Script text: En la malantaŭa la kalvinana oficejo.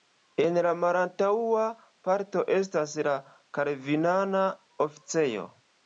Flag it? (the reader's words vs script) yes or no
yes